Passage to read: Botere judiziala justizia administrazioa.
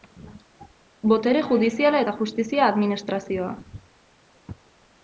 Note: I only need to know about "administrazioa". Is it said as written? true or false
true